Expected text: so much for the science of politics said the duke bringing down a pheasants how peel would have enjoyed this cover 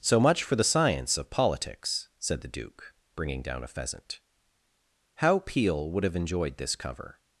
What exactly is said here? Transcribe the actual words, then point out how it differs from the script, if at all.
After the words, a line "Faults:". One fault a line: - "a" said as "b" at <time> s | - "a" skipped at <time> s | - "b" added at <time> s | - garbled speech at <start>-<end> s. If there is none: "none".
so much for the science of politics said the duke bringing down a pheasant how peel would have enjoyed this cover
Faults:
- "pheasants" said as "pheasant" at 3.7 s